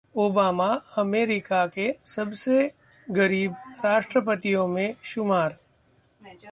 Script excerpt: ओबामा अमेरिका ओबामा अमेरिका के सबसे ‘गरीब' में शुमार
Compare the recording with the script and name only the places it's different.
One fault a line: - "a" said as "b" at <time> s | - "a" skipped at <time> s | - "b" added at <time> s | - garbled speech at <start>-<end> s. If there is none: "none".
- "ओबामा अमेरिका" skipped at 1.6 s
- "राष्ट्रपतियों" added at 3.8 s